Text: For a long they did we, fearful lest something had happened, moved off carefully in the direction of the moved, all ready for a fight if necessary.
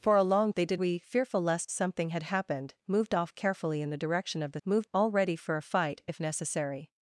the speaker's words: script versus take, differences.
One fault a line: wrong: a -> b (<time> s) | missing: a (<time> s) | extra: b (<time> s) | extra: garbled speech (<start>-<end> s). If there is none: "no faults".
no faults